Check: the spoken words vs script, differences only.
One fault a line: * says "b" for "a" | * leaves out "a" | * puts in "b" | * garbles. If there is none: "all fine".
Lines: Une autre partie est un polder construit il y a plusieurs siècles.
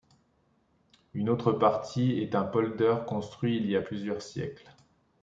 all fine